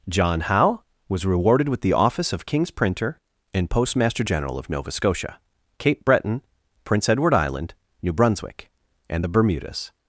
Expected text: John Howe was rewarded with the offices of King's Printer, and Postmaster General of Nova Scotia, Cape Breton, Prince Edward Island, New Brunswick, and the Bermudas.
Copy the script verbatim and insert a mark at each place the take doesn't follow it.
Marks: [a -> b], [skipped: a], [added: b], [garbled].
John Howe was rewarded with the [offices -> office] of King's Printer, and Postmaster General of Nova Scotia, Cape Breton, Prince Edward Island, New Brunswick, and the Bermudas.